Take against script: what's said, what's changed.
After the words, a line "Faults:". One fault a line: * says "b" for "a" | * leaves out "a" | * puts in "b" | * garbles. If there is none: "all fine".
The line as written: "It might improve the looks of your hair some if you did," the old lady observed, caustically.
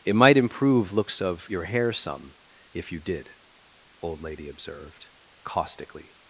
"It might improve looks of your hair some if you did," old lady observed, caustically.
Faults:
* leaves out "the"
* leaves out "the"